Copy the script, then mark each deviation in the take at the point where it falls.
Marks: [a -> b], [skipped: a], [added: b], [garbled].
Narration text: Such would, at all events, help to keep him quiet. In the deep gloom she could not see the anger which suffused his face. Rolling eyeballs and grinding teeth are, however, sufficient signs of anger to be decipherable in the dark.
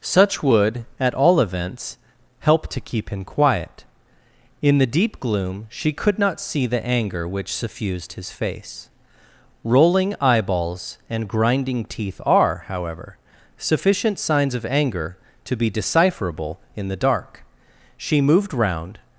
Such would, at all events, help to keep him quiet. In the deep gloom she could not see the anger which suffused his face. Rolling eyeballs and grinding teeth are, however, sufficient signs of anger to be decipherable in the dark. [added: She moved round]